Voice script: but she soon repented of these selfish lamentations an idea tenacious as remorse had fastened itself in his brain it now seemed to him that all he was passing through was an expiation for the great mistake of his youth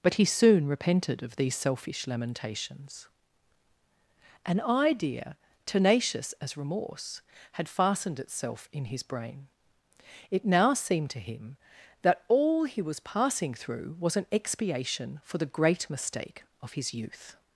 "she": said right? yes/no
no